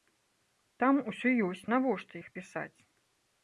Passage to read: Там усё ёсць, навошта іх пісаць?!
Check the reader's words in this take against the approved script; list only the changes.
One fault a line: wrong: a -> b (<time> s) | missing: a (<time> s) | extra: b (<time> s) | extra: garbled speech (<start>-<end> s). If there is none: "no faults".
no faults